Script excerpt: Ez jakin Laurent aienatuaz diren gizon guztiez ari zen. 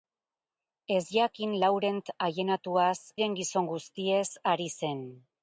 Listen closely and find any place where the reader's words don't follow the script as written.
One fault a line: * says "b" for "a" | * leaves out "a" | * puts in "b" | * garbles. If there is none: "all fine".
all fine